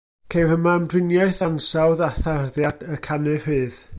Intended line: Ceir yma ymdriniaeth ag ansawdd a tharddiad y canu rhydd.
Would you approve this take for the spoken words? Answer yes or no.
no